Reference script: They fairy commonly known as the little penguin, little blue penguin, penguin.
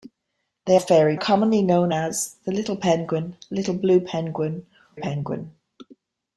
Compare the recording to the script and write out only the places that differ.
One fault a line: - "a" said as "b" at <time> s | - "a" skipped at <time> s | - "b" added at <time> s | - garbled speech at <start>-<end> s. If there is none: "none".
none